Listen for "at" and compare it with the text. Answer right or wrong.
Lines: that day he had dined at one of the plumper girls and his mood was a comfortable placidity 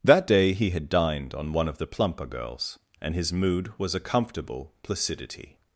wrong